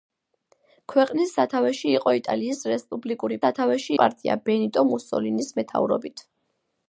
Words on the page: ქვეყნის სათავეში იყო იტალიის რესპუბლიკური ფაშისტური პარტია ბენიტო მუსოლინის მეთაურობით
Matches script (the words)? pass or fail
fail